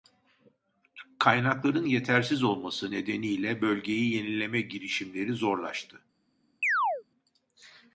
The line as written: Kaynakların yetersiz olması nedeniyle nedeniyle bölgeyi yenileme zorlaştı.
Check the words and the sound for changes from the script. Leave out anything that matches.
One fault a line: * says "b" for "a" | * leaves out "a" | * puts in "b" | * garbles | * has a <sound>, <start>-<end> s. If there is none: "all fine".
* leaves out "nedeniyle"
* puts in "girişimleri"
* has a chirp, 6.6-7.0 s